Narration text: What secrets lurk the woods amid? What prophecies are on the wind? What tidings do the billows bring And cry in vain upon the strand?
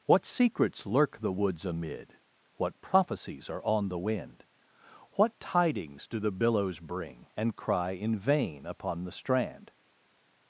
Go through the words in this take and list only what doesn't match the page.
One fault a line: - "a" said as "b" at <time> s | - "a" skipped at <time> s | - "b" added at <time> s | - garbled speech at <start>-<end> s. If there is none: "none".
none